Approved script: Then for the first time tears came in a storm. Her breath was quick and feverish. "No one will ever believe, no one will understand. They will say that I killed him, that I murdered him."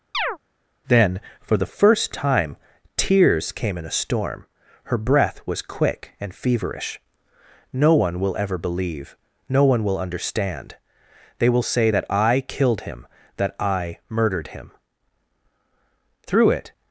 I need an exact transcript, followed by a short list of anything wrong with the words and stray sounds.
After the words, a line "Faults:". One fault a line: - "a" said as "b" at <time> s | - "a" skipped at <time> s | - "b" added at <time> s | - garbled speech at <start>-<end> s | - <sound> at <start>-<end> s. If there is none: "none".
Then for the first time tears came in a storm. Her breath was quick and feverish. "No one will ever believe, no one will understand. They will say that I killed him, that I murdered him." Through it
Faults:
- chirp at 0.1-0.4 s
- "Through it" added at 16.3 s